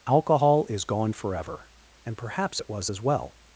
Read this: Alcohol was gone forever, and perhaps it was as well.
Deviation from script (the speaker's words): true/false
true